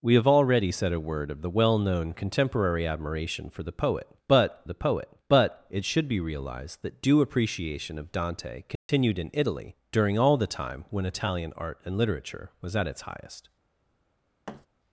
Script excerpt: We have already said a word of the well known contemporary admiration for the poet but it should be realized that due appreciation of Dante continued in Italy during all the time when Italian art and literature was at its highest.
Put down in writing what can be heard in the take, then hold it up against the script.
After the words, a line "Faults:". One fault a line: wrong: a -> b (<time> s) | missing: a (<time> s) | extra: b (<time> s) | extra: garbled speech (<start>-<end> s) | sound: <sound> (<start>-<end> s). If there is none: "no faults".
We have already said a word of the well known contemporary admiration for the poet but the poet but it should be realized that due appreciation of Dante continued in Italy during all the time when Italian art and literature was at its highest.
Faults:
extra: the poet but (4.6 s)
sound: dropout (8.8-8.9 s)
sound: thud (14.5-14.7 s)